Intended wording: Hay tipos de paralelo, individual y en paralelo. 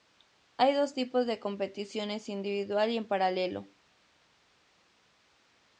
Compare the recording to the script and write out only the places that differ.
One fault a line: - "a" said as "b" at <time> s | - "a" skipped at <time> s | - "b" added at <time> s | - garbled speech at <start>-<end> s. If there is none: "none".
- "dos" added at 0.7 s
- "paralelo" said as "competiciones" at 1.4 s